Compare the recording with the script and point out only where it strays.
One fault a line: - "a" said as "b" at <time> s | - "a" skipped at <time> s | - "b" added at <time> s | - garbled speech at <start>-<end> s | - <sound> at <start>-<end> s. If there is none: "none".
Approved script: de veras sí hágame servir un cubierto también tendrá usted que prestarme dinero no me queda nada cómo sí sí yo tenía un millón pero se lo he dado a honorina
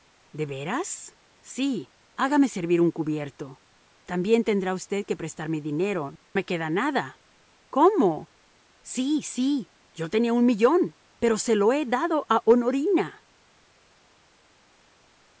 - "no" skipped at 6.2 s